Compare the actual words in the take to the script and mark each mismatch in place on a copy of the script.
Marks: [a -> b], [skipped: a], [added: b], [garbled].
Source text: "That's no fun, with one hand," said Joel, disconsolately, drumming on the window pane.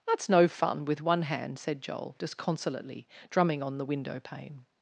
"That's no fun, with one hand," said Joel, disconsolately, drumming on the window pane.